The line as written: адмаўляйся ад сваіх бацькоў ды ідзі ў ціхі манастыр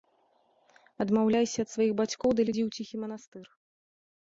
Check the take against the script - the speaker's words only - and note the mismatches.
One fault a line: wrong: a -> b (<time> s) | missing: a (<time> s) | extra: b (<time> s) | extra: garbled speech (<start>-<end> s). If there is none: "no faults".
no faults